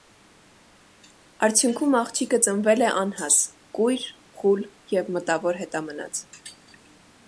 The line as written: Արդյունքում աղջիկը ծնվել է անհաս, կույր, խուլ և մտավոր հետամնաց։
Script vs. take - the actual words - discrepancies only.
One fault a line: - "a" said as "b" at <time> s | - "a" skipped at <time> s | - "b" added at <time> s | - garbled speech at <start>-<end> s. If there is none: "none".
none